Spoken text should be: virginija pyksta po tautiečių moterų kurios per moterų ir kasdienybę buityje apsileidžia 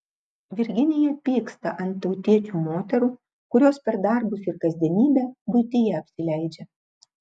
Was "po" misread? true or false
true